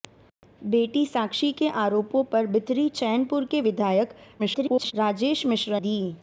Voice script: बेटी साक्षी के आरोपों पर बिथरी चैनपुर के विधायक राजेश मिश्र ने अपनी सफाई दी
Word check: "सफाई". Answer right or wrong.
wrong